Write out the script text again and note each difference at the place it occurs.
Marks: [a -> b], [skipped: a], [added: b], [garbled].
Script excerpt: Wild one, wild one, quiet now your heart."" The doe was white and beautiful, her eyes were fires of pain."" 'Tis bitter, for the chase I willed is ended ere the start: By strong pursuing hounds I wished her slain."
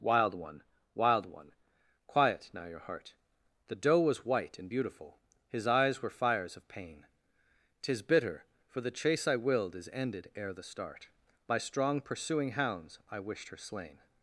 Wild one, wild one, quiet now your heart."" The doe was white and beautiful, [her -> his] eyes were fires of pain."" 'Tis bitter, for the chase I willed is ended ere the start: By strong pursuing hounds I wished her slain."